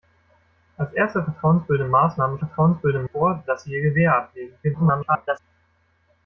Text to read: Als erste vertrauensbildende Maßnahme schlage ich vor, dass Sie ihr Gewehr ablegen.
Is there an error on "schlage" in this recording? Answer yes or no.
yes